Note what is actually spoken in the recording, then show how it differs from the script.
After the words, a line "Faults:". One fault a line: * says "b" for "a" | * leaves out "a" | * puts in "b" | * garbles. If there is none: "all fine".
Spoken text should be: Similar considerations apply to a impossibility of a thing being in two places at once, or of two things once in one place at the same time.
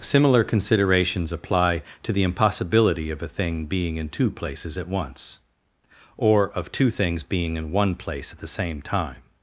Similar considerations apply to the impossibility of a thing being in two places at once, or of two things being in one place at the same time.
Faults:
* says "the" for "a"
* says "being" for "once"